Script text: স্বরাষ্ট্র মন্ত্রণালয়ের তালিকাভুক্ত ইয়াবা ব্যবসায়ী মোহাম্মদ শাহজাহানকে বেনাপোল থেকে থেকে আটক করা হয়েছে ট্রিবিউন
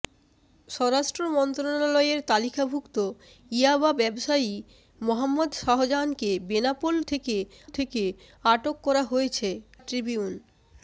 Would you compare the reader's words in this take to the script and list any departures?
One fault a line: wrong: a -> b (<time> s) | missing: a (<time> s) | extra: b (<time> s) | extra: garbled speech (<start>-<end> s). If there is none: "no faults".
no faults